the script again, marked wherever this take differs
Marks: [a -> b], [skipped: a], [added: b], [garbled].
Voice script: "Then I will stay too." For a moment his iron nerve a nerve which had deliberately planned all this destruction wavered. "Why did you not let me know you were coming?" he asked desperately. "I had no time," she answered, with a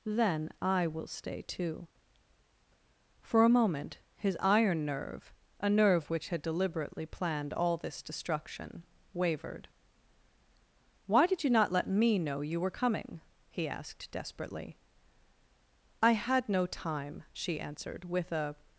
"Then I will stay too." For a moment his iron nerve a nerve which had deliberately planned all this destruction wavered. "Why did you not let me know you were coming?" he asked desperately. "I had no time," she answered, with a